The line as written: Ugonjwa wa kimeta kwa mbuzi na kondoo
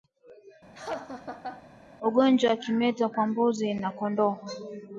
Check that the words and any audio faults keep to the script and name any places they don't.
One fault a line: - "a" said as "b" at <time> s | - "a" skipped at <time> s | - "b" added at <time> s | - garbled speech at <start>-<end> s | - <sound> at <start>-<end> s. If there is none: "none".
- laugh at 0.7-1.6 s